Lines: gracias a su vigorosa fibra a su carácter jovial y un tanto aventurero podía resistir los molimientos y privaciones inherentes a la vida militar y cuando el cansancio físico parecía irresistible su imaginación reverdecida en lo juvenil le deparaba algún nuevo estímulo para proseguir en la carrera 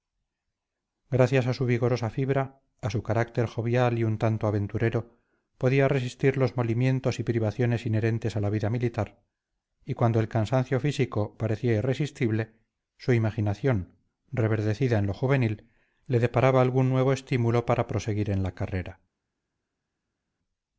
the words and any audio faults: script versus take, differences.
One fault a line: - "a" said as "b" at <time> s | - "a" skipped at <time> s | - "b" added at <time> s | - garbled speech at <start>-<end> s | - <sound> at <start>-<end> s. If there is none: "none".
none